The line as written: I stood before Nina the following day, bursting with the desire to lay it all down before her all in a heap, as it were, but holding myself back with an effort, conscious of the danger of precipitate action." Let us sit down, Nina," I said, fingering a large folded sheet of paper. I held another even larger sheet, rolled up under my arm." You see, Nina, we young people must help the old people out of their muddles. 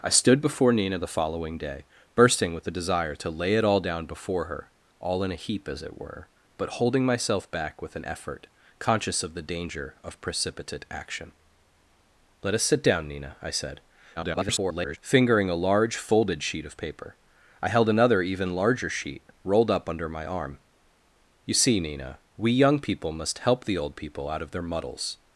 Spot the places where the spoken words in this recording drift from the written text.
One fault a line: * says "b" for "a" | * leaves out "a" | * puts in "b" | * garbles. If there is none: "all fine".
* garbles